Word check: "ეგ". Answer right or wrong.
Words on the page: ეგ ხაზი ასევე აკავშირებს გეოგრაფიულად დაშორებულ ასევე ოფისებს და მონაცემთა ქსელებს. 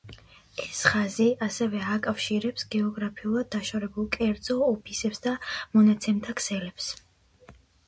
wrong